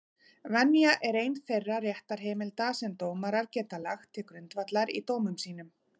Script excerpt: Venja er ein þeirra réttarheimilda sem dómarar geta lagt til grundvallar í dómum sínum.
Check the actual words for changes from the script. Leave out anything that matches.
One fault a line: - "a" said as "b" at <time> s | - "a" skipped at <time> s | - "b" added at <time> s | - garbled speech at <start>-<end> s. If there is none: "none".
none